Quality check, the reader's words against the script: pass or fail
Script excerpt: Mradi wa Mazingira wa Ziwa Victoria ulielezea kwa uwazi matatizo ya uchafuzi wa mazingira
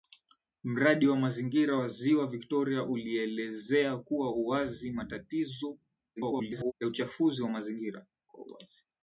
fail